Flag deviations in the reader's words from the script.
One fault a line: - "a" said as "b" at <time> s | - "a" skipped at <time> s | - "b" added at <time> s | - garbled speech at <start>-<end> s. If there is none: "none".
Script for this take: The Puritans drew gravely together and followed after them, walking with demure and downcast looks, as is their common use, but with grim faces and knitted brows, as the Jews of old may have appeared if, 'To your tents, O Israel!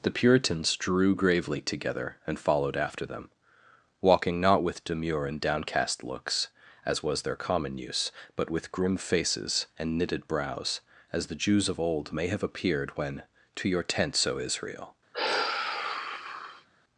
- "not" added at 4.4 s
- "is" said as "was" at 7.0 s
- "if" said as "when" at 13.0 s